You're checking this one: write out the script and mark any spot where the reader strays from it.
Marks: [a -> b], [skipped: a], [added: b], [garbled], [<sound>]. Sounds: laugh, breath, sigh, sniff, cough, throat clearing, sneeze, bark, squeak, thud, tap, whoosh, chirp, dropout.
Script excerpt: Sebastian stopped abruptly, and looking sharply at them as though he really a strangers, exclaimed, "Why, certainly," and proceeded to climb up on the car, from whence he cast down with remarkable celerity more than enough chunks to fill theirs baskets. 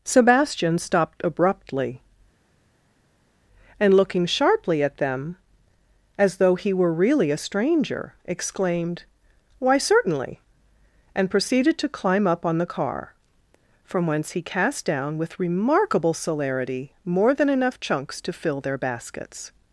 Sebastian stopped abruptly, and looking sharply at them as though he [added: were] really a [strangers, -> stranger] exclaimed, "Why, certainly," and proceeded to climb up on the car, from whence he cast down with remarkable celerity more than enough chunks to fill [theirs -> their] baskets.